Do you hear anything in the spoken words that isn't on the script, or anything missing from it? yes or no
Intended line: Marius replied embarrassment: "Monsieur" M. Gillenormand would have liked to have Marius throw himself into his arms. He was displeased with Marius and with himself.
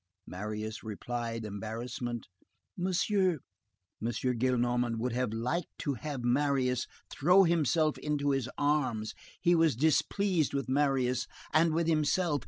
no